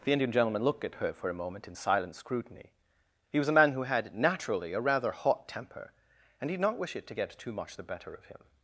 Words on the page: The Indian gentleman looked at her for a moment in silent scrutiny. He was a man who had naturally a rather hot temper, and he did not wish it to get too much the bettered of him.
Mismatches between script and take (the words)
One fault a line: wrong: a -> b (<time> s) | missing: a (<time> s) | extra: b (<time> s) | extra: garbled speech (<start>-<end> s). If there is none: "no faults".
wrong: bettered -> better (7.8 s)